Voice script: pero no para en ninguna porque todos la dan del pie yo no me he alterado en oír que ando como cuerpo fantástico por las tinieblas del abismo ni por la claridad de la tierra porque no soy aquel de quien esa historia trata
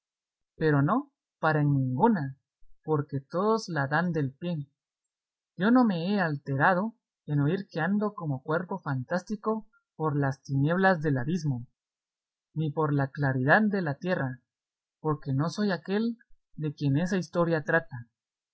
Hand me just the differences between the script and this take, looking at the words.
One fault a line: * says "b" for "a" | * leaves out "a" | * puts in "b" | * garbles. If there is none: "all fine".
all fine